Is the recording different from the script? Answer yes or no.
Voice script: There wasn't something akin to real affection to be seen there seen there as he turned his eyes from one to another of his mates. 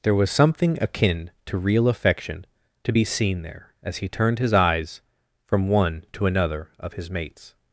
yes